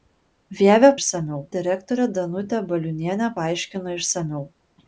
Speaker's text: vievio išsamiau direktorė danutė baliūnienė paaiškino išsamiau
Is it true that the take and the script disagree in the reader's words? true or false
false